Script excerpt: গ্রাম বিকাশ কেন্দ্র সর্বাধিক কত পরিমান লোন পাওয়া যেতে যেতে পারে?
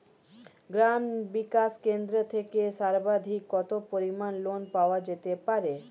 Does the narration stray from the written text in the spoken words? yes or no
yes